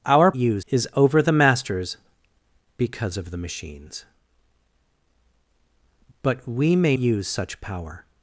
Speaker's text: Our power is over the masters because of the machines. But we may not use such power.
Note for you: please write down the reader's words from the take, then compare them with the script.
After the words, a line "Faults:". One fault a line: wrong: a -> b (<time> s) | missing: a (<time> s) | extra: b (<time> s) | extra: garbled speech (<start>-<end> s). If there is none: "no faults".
Our use is over the masters because of the machines. But we may use such power.
Faults:
wrong: power -> use (0.4 s)
missing: not (7.0 s)